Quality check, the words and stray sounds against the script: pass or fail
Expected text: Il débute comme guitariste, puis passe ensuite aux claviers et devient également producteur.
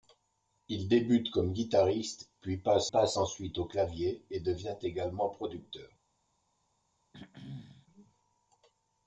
fail